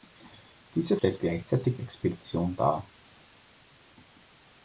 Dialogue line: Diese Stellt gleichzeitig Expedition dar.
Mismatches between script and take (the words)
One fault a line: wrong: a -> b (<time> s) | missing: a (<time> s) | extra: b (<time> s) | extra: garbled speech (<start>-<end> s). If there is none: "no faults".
no faults